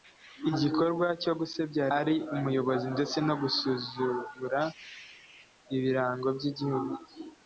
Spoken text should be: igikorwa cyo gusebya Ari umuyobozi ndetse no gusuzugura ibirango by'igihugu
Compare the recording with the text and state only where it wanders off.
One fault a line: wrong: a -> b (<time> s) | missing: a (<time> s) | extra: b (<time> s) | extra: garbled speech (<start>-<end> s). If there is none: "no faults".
no faults